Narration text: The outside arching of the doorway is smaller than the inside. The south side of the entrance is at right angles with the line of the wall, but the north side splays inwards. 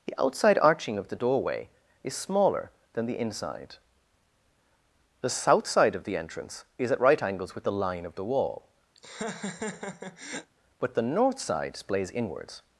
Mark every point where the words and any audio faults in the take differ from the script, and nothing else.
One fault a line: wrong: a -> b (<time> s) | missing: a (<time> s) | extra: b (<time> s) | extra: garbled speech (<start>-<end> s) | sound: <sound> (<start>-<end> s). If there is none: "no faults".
sound: laugh (9.0-10.5 s)